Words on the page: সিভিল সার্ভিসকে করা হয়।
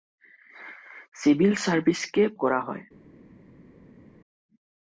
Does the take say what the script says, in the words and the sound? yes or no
yes